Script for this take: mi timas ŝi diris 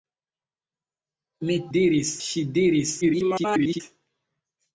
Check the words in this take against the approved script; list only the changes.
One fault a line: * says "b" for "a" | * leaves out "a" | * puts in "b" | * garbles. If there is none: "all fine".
* says "diris" for "timas"
* garbles